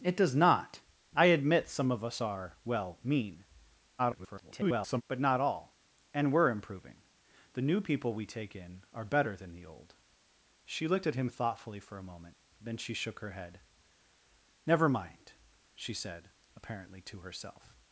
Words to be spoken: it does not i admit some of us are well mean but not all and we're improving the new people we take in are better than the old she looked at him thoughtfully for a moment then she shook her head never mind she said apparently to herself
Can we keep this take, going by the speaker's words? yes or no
no